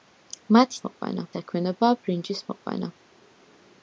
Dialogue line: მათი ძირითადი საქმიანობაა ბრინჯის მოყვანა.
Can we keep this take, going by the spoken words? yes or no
no